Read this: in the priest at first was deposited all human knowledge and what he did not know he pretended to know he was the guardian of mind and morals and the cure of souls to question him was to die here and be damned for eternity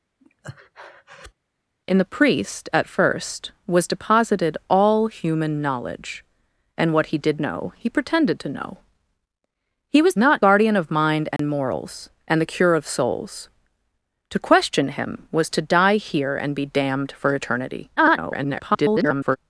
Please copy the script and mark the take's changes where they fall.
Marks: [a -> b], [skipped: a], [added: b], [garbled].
in the priest at first was deposited all human knowledge and what he did [skipped: not] know he pretended to know he was [the -> not] guardian of mind and morals and the cure of souls to question him was to die here and be damned for eternity [garbled]